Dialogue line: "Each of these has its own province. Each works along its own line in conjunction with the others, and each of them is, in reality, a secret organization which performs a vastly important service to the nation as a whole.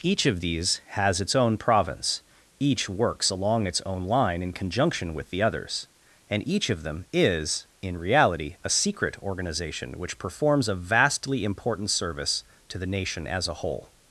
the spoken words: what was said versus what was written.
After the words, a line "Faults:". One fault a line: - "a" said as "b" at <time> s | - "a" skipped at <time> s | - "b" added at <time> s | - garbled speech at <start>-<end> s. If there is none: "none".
"Each of these has its own province. Each works along its own line in conjunction with the others, and each of them is, in reality, a secret organization which performs a vastly important service to the nation as a whole.
Faults:
none